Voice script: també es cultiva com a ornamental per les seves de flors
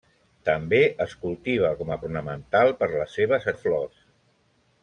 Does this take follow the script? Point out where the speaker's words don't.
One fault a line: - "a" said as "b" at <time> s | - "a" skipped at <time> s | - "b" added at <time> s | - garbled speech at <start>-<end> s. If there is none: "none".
none